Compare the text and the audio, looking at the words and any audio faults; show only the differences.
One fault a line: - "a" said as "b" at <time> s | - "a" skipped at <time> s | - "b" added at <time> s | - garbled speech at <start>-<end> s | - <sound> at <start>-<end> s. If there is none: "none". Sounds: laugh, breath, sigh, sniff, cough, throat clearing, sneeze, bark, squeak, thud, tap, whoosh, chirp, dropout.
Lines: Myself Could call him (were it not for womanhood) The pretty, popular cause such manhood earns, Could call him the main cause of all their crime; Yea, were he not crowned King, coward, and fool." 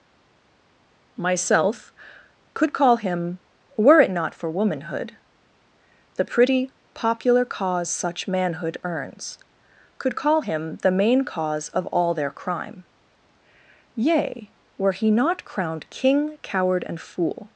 none